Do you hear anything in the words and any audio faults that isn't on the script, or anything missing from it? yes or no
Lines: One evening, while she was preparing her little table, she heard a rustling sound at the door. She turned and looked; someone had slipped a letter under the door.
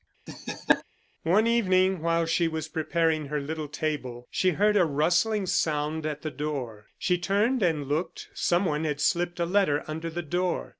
yes